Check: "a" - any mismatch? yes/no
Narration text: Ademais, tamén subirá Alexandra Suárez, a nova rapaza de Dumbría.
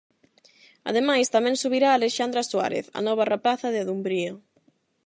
no